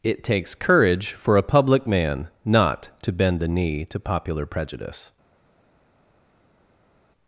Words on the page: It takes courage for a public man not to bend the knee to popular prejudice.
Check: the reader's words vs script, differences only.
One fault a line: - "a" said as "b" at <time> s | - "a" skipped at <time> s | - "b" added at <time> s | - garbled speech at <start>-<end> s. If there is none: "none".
none